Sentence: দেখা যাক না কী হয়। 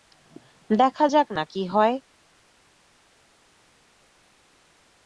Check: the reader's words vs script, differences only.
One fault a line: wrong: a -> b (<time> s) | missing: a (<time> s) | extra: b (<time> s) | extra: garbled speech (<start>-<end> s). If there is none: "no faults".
no faults